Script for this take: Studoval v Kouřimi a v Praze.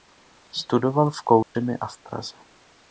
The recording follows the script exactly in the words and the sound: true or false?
false